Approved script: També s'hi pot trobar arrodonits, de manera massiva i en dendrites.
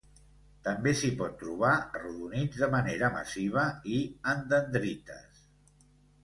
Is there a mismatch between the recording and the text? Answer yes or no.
no